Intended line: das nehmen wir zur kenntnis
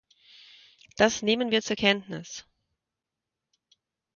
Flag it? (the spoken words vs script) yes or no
no